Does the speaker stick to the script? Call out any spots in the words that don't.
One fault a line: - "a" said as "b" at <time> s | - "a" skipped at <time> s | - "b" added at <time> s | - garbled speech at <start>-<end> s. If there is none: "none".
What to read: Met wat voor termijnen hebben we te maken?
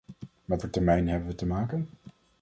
- "wat" skipped at 0.6 s